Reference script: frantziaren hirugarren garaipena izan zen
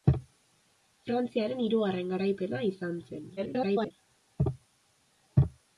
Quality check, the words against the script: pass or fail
fail